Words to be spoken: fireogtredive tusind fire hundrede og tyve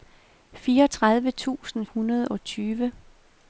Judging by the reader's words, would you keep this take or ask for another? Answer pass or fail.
fail